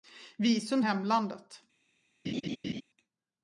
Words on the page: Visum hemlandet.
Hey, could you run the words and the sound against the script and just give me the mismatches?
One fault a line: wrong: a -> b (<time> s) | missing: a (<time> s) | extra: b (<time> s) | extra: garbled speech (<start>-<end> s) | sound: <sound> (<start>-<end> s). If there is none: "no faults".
sound: laugh (2.2-2.8 s)